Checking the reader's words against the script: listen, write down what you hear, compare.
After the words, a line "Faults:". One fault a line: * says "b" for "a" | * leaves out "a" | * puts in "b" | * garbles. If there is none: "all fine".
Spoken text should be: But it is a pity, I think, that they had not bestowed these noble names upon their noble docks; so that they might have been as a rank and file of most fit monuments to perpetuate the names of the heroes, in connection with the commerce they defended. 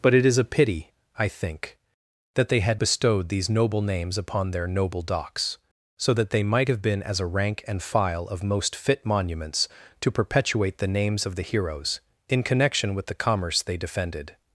But it is a pity, I think, that they had bestowed these noble names upon their noble docks; so that they might have been as a rank and file of most fit monuments to perpetuate the names of the heroes, in connection with the commerce they defended.
Faults:
* leaves out "not"